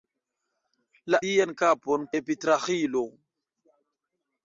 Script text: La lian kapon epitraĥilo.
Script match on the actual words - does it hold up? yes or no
yes